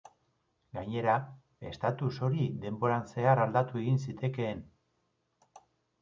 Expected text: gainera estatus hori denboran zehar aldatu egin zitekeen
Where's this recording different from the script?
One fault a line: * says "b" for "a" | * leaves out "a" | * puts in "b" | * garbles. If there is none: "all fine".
all fine